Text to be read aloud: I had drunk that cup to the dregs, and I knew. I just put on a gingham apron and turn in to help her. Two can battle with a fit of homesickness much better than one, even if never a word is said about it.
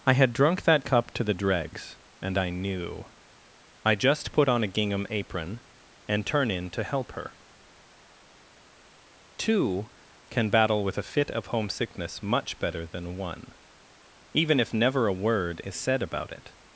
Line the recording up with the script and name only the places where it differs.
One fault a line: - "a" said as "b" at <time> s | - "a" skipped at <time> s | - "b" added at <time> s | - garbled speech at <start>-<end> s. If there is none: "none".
none